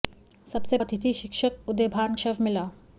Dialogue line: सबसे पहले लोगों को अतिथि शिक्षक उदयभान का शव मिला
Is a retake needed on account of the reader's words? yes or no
yes